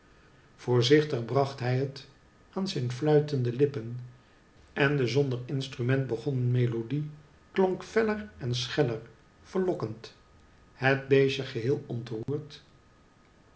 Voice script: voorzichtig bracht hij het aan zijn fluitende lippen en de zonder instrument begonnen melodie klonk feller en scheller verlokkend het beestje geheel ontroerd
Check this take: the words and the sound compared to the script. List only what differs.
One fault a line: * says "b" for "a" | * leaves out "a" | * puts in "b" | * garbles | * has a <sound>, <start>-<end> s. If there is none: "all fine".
* has a dropout, 12.2-12.3 s